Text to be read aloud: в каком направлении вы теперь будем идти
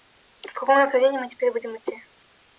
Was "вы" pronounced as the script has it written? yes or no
no